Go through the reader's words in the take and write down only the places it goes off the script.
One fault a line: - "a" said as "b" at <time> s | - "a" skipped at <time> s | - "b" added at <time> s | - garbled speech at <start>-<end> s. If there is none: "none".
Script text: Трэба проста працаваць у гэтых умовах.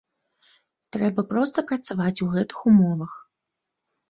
none